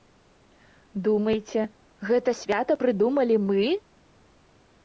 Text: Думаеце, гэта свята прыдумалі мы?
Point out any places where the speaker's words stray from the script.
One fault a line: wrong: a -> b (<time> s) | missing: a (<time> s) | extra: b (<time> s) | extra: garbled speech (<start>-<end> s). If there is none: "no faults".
no faults